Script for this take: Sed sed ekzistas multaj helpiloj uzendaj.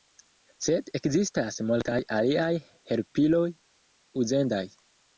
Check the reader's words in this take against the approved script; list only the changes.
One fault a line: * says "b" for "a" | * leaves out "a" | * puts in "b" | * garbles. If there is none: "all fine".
* leaves out "sed"
* puts in "aliaj"